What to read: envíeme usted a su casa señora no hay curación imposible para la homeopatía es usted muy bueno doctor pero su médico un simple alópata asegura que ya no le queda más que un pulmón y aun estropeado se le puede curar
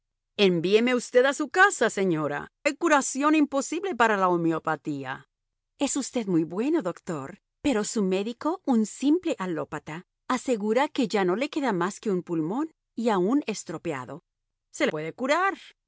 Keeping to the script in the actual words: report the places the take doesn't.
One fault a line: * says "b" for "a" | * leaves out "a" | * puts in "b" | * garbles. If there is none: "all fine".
* leaves out "no"
* leaves out "le"